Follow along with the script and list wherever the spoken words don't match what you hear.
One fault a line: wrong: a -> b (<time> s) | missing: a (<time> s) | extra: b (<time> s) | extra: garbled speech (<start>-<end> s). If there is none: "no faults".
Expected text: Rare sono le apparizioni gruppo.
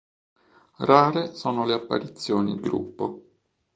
no faults